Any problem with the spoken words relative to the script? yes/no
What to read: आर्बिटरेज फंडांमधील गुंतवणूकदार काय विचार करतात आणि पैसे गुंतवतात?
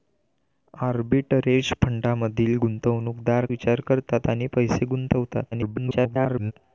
yes